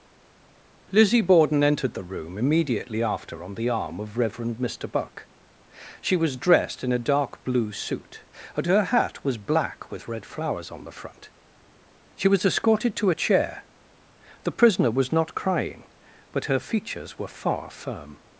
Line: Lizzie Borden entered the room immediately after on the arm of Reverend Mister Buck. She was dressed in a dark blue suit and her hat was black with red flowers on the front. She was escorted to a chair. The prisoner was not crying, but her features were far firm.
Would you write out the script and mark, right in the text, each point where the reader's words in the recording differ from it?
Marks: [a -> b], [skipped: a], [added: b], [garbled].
Lizzie Borden entered the room immediately after on the arm of Reverend Mister Buck. She was dressed in a dark blue suit and her hat was black with red flowers on the front. She was escorted to a chair. The prisoner was not crying, but her features were far firm.